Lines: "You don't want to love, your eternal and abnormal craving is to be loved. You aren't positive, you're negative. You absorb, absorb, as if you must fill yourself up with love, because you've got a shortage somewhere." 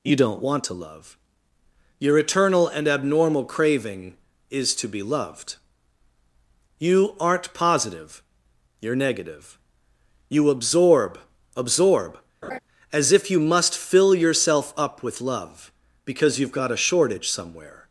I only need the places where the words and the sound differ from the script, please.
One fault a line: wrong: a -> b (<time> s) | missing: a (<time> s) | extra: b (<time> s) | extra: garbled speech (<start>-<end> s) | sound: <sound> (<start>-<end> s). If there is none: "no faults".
sound: laugh (12.4-12.6 s)